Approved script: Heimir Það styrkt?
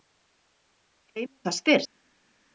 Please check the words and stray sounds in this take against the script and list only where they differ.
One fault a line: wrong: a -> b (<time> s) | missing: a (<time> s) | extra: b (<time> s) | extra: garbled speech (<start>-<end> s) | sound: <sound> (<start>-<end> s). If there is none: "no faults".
no faults